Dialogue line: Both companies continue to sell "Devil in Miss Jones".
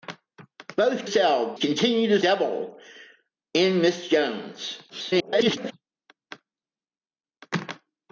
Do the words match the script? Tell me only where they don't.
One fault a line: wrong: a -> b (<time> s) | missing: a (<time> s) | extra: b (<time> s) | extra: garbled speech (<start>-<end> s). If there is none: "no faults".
wrong: companies -> sell (1.0 s)
missing: sell (2.2 s)
extra: garbled speech (4.9-5.7 s)